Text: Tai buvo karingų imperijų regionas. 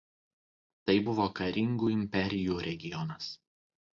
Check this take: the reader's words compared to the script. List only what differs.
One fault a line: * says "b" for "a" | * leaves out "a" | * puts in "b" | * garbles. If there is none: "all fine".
all fine